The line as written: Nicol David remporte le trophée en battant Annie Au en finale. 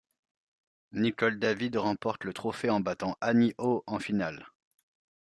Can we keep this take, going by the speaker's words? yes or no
yes